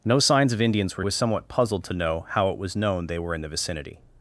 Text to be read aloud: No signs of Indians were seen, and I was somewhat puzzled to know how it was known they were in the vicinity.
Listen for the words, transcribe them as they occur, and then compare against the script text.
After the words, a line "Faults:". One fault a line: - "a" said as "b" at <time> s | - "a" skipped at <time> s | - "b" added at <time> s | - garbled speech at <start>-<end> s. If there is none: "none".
No signs of Indians were was somewhat puzzled to know how it was known they were in the vicinity.
Faults:
- "seen and I" skipped at 1.1 s